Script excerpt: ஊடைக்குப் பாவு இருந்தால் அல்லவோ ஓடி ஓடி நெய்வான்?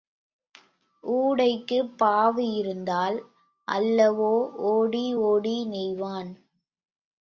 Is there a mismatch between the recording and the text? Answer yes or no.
no